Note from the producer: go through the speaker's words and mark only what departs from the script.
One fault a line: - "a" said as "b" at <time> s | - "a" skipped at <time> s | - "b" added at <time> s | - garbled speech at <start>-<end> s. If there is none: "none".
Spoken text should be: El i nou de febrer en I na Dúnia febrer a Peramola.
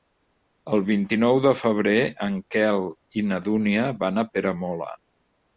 - "vint" added at 0.9 s
- "Quel" added at 2.6 s
- "febrer" said as "van" at 4.0 s